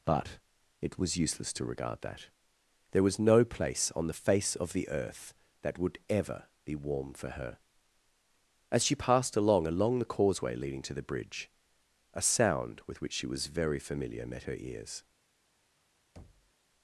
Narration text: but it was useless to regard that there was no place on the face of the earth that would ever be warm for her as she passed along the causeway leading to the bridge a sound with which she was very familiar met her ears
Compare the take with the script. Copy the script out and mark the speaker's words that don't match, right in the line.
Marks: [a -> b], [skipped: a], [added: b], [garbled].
but it was useless to regard that there was no place on the face of the earth that would ever be warm for her as she passed along [added: along] the causeway leading to the bridge a sound with which she was very familiar met her ears